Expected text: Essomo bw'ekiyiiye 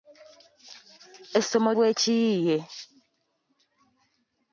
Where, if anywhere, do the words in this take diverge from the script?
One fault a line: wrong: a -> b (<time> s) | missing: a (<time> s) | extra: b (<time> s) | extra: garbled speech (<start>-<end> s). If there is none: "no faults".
no faults